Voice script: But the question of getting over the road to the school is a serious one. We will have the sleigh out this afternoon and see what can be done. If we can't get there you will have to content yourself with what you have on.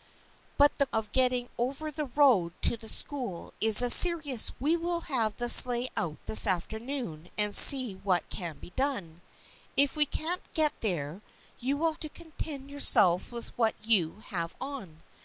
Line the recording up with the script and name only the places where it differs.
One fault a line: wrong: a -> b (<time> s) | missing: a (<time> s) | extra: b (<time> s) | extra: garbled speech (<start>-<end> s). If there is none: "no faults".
missing: question (0.9 s)
missing: one (4.5 s)
missing: have (11.9 s)